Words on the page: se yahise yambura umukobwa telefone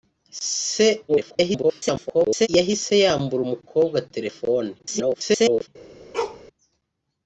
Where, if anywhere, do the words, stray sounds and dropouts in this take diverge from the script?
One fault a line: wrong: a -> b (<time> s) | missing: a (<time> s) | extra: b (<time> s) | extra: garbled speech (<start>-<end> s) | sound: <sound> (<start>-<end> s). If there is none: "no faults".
extra: garbled speech (1.1-2.5 s)
extra: garbled speech (4.8-5.7 s)
sound: bark (6.1-6.4 s)